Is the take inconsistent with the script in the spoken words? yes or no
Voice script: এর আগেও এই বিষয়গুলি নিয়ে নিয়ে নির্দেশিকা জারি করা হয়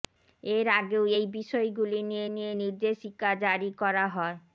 no